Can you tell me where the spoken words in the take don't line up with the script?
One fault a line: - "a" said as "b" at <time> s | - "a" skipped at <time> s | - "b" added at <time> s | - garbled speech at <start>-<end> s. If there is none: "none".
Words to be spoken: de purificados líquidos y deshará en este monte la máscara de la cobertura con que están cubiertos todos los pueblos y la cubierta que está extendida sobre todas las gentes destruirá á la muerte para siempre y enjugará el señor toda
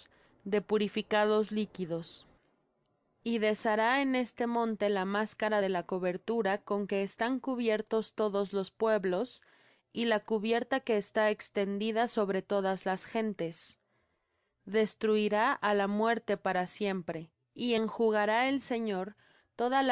none